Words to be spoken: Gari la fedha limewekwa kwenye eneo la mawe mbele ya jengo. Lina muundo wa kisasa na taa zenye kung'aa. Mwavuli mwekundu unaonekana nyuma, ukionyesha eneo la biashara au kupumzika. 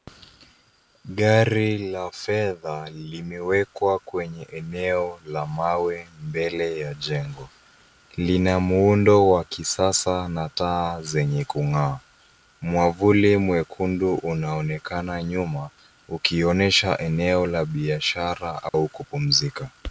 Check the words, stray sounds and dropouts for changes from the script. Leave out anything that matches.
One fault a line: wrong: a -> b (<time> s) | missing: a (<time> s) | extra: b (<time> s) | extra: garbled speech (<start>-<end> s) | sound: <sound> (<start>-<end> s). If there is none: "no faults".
sound: dropout (18.7-18.7 s)